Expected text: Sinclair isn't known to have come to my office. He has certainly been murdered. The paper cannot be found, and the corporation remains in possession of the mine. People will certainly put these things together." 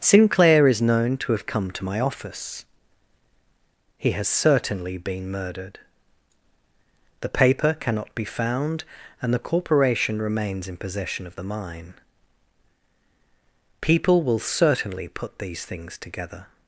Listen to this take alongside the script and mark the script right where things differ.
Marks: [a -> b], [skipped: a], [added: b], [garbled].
Sinclair [isn't -> is] known to have come to my office. He has certainly been murdered. The paper cannot be found, and the corporation remains in possession of the mine. People will certainly put these things together."